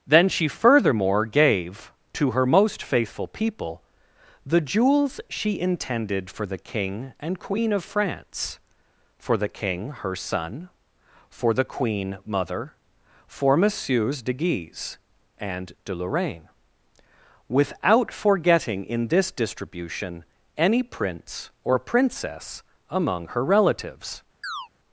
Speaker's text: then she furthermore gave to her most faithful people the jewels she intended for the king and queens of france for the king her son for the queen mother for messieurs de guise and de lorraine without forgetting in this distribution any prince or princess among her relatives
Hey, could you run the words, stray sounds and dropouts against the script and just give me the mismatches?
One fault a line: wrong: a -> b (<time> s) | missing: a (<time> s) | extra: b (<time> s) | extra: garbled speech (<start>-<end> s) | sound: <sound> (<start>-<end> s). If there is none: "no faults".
wrong: queens -> queen (7.4 s)
sound: chirp (24.4-24.7 s)